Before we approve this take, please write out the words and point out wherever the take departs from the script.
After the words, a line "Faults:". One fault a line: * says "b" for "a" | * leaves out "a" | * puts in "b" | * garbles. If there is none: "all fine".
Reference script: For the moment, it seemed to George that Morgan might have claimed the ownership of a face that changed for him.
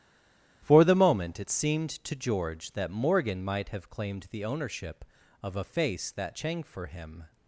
For the moment, it seemed to George that Morgan might have claimed the ownership of a face that chang for him.
Faults:
* says "chang" for "changed"